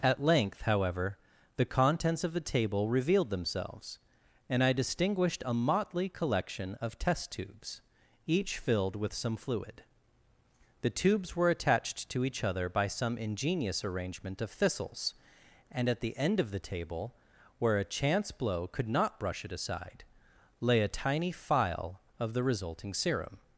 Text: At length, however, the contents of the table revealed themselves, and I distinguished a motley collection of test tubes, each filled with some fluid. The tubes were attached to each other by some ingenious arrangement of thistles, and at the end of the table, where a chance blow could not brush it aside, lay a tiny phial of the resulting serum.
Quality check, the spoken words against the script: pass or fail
pass